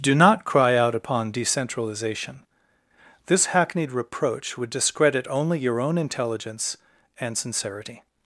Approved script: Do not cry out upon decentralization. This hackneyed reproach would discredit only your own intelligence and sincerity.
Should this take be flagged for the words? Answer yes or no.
no